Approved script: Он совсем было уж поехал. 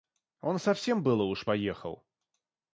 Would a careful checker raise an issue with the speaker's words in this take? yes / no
no